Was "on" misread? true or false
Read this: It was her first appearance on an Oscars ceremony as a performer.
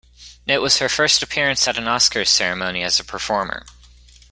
true